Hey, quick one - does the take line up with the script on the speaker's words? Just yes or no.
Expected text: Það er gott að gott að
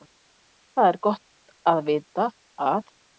no